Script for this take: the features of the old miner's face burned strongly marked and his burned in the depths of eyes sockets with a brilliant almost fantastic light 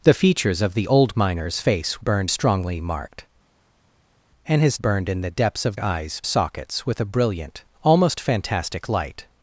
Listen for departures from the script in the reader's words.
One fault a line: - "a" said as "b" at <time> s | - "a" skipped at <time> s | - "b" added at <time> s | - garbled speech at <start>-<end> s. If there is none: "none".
none